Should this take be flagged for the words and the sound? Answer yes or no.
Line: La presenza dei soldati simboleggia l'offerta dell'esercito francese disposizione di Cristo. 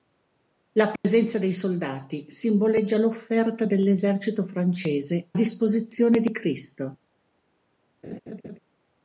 yes